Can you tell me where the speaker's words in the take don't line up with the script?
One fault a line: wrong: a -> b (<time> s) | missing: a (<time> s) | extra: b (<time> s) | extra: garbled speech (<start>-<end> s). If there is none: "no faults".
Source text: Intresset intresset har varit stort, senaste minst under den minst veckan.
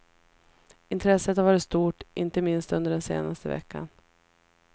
missing: intresset (1.4 s)
wrong: senaste -> inte (2.1 s)
wrong: minst -> senaste (3.0 s)